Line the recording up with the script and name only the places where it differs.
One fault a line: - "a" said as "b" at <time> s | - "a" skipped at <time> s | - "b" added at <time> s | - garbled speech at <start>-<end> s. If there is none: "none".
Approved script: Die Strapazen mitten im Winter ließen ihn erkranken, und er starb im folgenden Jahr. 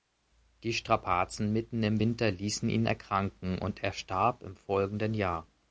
none